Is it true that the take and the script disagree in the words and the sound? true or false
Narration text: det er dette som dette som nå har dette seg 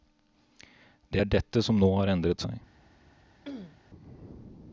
true